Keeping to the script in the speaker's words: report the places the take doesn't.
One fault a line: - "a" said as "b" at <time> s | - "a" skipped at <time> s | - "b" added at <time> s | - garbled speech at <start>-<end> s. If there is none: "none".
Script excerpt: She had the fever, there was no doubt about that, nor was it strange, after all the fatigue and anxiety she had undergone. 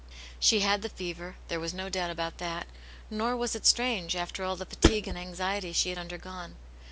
none